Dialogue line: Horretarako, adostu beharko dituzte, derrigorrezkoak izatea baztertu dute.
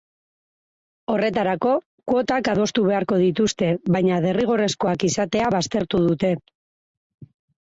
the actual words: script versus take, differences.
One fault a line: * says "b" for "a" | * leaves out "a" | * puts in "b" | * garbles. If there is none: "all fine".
* puts in "kuotak"
* puts in "baina"